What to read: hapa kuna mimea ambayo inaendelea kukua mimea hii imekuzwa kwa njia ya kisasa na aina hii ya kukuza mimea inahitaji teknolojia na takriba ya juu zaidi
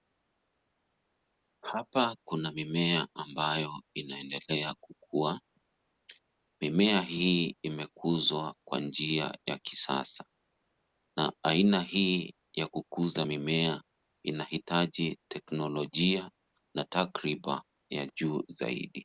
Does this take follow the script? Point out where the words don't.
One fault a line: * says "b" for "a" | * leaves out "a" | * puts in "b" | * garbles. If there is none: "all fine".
all fine